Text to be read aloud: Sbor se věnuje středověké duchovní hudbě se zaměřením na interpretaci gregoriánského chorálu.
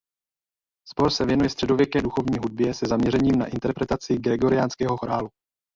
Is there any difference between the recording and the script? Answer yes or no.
no